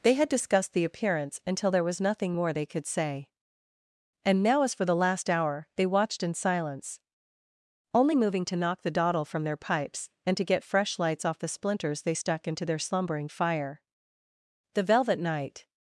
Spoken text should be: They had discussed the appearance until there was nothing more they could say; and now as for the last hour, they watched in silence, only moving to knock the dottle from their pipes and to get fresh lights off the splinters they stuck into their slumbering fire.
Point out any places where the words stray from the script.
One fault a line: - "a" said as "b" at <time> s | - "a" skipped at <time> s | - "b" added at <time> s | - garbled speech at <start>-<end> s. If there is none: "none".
- "The velvet night" added at 14.7 s